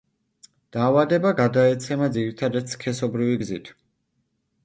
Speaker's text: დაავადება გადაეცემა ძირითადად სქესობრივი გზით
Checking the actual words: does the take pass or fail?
pass